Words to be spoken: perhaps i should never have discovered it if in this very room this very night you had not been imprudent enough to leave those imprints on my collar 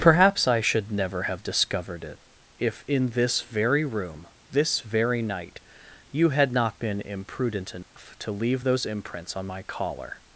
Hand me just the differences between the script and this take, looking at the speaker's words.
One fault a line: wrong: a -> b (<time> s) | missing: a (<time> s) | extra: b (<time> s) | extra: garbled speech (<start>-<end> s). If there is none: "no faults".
no faults